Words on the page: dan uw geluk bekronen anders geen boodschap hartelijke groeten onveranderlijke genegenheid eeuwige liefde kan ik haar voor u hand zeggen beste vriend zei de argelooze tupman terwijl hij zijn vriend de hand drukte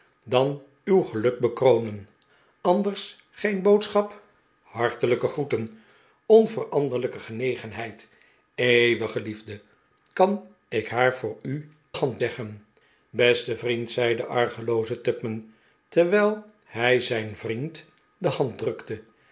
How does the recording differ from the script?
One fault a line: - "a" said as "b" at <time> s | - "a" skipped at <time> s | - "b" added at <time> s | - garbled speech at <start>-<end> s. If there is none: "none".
none